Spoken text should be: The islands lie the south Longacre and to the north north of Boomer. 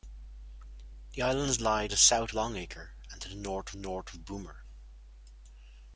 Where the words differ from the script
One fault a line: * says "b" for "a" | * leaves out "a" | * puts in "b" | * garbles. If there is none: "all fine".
all fine